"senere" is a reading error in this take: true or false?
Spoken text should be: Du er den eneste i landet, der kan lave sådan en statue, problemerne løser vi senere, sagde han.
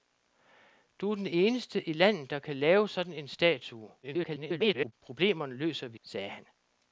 true